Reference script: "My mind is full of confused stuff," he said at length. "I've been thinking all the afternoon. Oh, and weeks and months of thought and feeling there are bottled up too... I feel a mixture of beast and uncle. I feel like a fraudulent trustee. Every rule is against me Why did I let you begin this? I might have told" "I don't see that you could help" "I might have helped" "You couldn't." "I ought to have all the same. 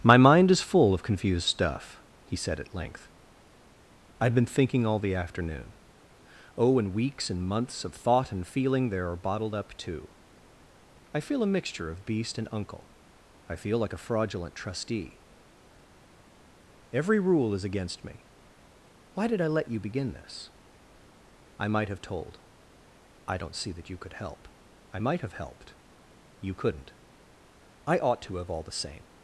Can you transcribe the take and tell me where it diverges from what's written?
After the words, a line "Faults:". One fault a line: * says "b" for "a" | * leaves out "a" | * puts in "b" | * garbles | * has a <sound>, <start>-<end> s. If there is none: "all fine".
"My mind is full of confused stuff," he said at length. "I've been thinking all the afternoon. Oh, and weeks and months of thought and feeling there are bottled up too... I feel a mixture of beast and uncle. I feel like a fraudulent trustee. Every rule is against me Why did I let you begin this? I might have told" "I don't see that you could help" "I might have helped" "You couldn't." "I ought to have all the same.
Faults:
all fine